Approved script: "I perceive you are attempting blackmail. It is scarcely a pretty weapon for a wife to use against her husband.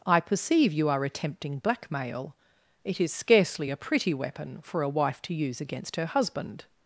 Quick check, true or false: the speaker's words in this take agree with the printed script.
true